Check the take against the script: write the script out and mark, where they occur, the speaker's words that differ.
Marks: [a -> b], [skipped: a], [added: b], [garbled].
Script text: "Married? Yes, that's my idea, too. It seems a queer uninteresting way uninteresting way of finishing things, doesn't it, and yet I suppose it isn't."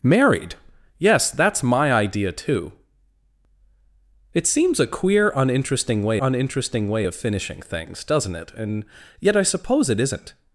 "Married? Yes, that's my idea, too. It seems a queer uninteresting way uninteresting way of finishing things, doesn't it, and yet I suppose it isn't."